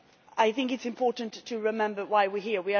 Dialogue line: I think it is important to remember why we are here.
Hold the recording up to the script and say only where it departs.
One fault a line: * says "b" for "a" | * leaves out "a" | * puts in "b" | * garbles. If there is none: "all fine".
all fine